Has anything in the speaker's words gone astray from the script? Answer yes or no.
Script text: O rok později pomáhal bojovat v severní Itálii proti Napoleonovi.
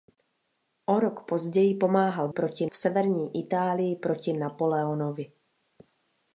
yes